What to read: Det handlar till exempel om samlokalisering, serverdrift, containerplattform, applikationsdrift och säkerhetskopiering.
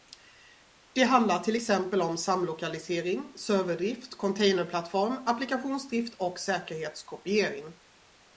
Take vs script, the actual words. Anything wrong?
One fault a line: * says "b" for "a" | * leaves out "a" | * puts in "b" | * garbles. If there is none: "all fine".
all fine